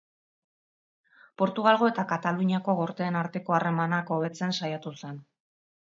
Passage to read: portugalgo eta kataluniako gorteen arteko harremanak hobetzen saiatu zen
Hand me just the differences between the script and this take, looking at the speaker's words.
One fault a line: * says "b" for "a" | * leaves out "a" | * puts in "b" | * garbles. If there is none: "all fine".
all fine